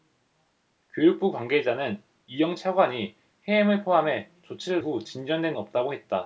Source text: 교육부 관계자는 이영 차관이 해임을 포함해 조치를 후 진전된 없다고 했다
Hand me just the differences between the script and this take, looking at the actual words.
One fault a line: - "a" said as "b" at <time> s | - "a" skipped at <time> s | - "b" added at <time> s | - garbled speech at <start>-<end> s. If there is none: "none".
none